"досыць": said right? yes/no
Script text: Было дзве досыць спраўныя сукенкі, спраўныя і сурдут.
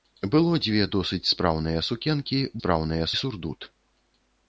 yes